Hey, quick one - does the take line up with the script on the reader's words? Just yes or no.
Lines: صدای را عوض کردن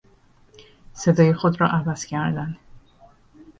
no